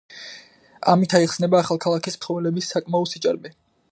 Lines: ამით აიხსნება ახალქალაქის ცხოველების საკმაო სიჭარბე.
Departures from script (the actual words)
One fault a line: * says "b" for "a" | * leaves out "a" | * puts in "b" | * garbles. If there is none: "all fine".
all fine